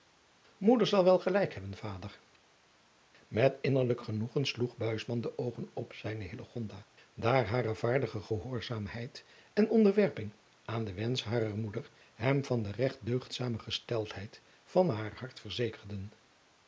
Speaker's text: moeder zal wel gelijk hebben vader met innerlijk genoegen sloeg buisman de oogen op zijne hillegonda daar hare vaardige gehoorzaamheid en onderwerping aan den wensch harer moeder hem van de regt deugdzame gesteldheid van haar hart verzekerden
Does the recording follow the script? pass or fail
pass